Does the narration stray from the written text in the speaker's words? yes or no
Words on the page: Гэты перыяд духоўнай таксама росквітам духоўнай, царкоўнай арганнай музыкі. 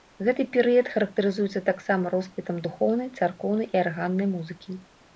yes